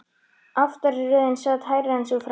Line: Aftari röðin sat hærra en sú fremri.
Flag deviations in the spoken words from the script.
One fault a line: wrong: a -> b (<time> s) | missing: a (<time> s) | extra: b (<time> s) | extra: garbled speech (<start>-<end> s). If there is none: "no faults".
no faults